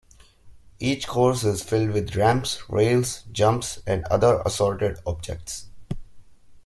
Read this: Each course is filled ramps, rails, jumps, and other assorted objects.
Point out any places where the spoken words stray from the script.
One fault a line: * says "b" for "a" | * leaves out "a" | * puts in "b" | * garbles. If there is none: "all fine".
* puts in "with"